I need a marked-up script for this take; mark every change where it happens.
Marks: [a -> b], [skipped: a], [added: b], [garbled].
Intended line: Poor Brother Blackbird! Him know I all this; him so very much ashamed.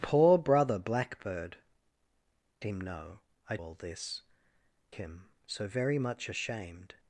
Poor Brother Blackbird! Him know I all this; him so very much ashamed.